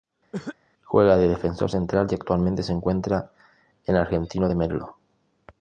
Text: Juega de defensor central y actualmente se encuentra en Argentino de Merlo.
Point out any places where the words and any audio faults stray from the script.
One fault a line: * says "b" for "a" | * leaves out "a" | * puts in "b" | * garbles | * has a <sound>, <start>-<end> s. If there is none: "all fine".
* has a cough, 0.3-0.6 s